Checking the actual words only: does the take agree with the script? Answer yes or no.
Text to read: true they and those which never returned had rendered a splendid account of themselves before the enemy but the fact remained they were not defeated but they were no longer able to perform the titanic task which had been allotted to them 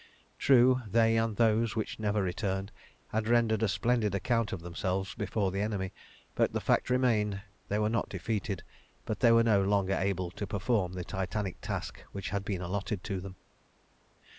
yes